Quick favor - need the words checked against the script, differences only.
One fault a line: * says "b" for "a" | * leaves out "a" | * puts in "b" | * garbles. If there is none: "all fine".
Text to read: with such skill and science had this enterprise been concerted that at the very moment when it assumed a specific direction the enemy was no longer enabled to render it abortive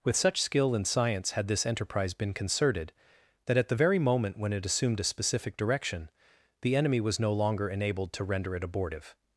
all fine